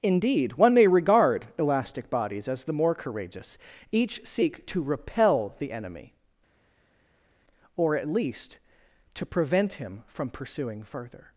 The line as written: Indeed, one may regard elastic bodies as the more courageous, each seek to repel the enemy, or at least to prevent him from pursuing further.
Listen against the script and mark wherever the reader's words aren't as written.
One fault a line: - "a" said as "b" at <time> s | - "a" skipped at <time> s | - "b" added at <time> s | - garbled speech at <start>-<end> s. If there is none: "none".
none